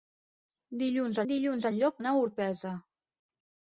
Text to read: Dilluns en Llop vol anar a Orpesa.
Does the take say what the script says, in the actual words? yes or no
no